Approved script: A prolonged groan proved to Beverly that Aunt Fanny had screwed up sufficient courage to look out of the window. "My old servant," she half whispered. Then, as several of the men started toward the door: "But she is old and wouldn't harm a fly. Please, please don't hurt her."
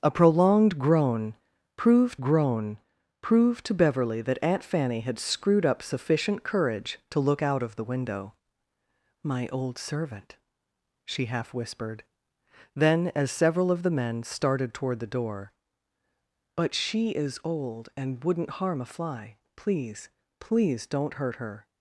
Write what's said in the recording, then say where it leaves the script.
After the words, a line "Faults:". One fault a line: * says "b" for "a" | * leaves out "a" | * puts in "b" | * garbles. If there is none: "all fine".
A prolonged groan proved groan proved to Beverly that Aunt Fanny had screwed up sufficient courage to look out of the window. "My old servant," she half whispered. Then, as several of the men started toward the door: "But she is old and wouldn't harm a fly. Please, please don't hurt her."
Faults:
* puts in "groan proved"